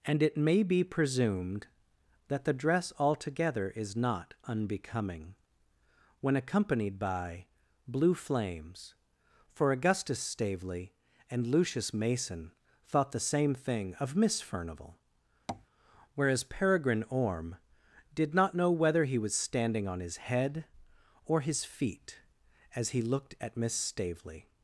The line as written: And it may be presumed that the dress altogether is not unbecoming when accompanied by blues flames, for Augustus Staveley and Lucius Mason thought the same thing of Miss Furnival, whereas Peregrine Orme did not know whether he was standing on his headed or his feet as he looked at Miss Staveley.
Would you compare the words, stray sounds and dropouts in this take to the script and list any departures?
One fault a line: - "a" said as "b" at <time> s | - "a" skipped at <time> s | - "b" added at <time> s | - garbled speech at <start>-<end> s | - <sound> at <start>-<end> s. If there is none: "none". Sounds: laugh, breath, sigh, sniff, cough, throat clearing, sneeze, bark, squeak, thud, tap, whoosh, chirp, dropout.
- "blues" said as "blue" at 7.9 s
- tap at 15.5-15.7 s
- "headed" said as "head" at 20.2 s